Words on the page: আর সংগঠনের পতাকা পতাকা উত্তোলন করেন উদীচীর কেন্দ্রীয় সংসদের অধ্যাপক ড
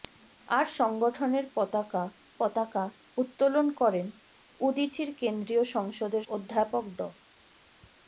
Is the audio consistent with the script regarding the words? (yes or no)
yes